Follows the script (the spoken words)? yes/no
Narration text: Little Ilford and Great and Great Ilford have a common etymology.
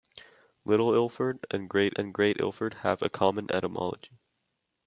yes